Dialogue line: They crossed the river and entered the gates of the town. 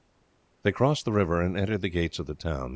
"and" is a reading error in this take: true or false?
false